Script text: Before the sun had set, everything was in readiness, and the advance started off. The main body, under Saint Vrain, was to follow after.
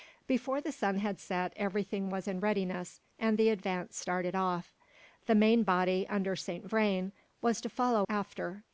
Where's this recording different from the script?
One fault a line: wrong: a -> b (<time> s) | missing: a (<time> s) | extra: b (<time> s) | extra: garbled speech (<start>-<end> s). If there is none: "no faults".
no faults